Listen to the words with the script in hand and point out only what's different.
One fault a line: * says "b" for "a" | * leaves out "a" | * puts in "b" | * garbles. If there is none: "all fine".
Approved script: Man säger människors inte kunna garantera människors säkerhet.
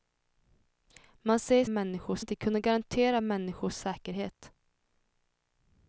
all fine